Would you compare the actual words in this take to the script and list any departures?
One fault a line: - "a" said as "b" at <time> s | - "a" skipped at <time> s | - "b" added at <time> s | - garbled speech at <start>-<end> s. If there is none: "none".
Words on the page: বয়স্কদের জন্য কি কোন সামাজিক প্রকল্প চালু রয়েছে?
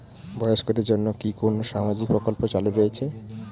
none